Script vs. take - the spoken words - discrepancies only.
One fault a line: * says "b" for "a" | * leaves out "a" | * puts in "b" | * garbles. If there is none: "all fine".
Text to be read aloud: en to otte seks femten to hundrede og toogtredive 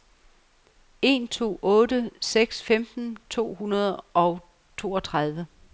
all fine